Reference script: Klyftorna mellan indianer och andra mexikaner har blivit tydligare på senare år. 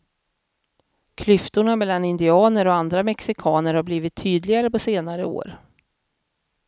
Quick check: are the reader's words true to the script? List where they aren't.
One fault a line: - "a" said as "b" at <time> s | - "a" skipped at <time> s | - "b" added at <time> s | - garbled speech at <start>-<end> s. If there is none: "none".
none